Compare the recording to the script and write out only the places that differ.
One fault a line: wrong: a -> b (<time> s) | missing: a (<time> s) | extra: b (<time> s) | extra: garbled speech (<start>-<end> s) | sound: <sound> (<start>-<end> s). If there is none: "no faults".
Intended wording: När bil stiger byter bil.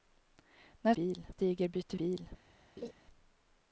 sound: laugh (2.8-2.9 s)